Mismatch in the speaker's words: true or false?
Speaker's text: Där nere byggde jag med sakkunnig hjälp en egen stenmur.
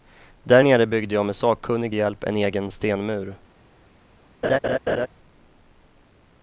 false